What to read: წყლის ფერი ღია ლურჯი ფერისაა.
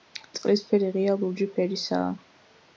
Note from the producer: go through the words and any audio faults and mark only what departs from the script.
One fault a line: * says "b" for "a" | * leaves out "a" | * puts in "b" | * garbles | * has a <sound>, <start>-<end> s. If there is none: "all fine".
all fine